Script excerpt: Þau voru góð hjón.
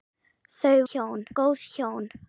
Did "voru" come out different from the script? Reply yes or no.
yes